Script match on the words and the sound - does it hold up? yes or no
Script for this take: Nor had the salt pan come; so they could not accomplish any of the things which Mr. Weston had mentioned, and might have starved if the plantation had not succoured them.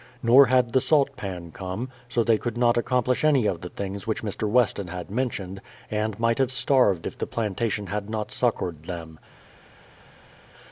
yes